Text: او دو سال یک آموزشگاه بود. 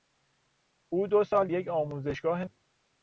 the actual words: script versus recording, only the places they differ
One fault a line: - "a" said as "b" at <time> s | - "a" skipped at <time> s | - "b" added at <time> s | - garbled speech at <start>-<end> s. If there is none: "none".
none